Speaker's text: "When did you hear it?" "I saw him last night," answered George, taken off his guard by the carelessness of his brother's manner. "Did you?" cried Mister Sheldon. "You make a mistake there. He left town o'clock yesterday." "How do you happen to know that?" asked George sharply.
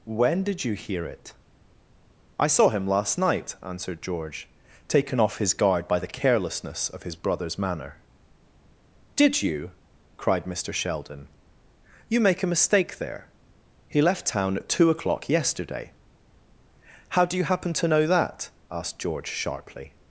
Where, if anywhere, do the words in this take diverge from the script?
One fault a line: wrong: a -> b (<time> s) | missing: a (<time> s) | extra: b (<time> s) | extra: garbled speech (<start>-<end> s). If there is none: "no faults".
extra: at two (14.6 s)